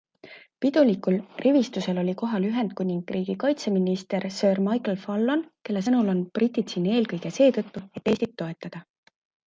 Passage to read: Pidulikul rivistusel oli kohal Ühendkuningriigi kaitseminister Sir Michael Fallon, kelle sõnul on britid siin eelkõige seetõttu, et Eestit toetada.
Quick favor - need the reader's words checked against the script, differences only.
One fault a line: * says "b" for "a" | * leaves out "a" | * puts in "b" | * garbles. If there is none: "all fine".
all fine